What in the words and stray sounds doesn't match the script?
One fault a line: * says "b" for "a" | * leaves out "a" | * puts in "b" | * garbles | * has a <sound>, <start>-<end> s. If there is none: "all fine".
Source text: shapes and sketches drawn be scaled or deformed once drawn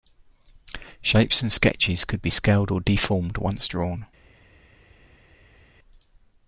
* says "could" for "drawn"